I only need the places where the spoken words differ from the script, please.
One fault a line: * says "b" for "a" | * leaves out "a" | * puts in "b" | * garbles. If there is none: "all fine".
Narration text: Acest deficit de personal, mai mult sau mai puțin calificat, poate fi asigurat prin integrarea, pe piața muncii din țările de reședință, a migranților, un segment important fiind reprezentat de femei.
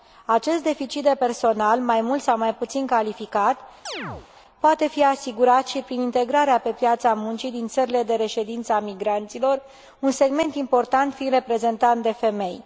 * puts in "și"